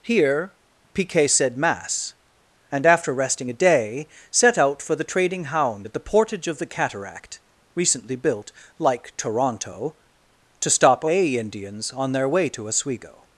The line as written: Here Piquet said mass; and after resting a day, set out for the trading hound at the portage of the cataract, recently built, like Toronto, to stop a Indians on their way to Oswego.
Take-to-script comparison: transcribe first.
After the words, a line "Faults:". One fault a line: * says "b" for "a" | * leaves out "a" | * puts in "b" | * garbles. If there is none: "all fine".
Here Piquet said mass; and after resting a day, set out for the trading hound at the portage of the cataract, recently built, like Toronto, to stop a Indians on their way to Oswego.
Faults:
all fine